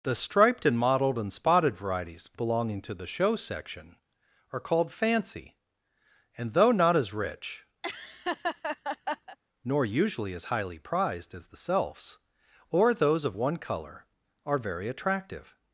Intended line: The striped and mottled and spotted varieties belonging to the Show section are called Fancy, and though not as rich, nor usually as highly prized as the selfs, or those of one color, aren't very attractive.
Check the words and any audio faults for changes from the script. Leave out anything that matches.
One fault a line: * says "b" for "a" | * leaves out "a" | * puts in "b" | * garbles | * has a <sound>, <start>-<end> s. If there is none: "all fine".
* has a laugh, 7.8-9.4 s
* says "are" for "aren't"